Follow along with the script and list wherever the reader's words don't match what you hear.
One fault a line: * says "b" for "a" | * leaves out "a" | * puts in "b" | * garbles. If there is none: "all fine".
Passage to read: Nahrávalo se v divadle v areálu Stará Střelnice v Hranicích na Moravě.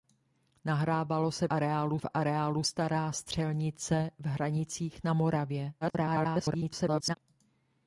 * says "areálu" for "divadle"
* garbles